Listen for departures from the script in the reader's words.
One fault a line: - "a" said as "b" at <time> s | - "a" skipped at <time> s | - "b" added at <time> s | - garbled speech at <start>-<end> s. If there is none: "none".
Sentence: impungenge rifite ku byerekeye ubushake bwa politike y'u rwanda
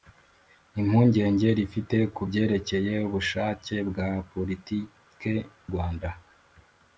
- "y'u" skipped at 5.3 s